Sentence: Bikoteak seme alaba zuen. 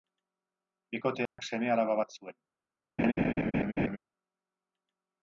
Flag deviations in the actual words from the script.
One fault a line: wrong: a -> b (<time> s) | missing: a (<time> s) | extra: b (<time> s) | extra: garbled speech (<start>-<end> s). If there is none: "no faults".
extra: bat (2.0 s)